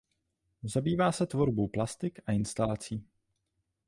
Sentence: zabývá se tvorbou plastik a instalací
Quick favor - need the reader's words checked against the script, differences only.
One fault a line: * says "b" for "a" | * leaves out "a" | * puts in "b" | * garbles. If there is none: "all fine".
all fine